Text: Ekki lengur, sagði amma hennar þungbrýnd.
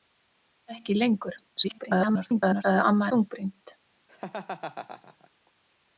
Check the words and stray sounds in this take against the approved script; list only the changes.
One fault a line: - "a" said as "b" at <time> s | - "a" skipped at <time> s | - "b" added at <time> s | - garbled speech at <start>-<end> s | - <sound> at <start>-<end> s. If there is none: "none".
- garbled speech at 1.6-2.6 s
- "hennar" skipped at 3.1 s
- laugh at 4.1-5.3 s